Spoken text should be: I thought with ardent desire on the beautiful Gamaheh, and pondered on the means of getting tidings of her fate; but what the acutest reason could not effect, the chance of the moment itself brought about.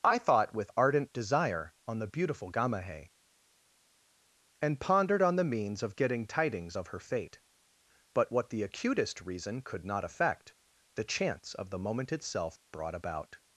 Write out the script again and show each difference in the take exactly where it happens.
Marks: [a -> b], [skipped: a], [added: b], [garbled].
I thought with ardent desire on the beautiful Gamaheh, and pondered on the means of getting tidings of her fate; but what the acutest reason could not effect, the chance of the moment itself brought about.